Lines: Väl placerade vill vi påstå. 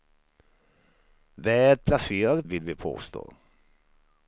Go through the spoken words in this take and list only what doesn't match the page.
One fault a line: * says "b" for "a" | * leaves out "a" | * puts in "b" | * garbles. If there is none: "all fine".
all fine